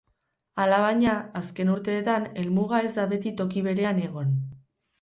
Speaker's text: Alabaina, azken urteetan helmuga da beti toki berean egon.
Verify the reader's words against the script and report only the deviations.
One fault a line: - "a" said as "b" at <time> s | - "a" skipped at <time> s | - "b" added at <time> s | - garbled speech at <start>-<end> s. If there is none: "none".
- "ez" added at 2.9 s